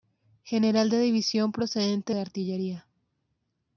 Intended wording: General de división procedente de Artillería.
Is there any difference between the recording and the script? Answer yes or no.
no